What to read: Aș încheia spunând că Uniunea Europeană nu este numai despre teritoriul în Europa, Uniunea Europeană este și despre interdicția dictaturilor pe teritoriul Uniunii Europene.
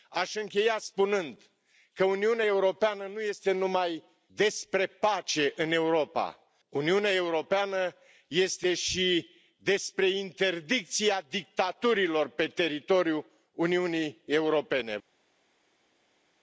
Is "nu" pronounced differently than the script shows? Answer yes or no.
no